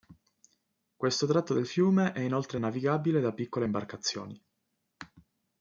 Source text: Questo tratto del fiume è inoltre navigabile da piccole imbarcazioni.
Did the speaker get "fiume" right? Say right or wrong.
right